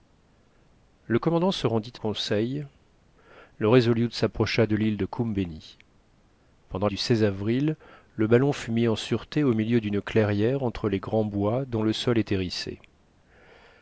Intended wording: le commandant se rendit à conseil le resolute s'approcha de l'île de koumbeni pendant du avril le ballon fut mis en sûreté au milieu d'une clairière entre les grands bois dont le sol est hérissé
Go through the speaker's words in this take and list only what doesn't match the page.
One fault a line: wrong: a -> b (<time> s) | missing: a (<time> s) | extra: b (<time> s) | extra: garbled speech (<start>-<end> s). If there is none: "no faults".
no faults